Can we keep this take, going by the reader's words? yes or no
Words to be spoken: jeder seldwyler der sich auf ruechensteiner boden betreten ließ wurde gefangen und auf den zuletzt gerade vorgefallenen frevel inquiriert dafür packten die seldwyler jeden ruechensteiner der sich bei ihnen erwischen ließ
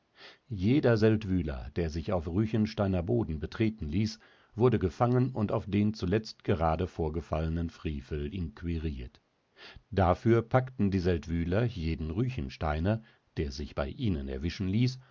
yes